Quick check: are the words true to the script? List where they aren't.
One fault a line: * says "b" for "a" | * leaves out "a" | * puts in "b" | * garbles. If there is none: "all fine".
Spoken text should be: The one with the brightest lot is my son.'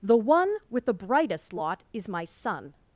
all fine